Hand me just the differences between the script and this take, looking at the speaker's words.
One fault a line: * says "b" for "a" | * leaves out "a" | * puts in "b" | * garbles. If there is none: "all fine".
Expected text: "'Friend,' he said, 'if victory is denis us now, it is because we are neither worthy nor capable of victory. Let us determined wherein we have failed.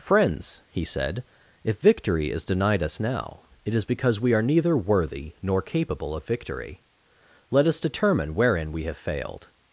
* says "Friends" for "Friend"
* says "denied" for "denis"
* says "determine" for "determined"